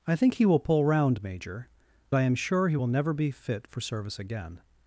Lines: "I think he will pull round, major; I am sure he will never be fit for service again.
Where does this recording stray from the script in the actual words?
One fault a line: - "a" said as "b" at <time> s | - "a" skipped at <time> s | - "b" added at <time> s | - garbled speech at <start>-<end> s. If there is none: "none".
none